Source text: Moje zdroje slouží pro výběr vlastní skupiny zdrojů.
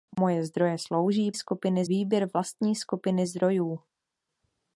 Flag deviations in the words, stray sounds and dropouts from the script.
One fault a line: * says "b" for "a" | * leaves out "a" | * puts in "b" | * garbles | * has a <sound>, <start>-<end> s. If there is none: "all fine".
* says "skupiny" for "pro"